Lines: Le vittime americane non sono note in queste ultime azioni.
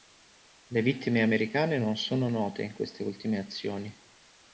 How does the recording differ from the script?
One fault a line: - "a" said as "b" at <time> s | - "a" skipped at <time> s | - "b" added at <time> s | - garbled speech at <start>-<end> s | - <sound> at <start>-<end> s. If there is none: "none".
none